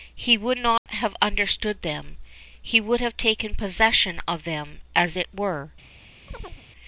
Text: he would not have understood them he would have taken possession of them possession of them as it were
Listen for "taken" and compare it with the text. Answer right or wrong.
right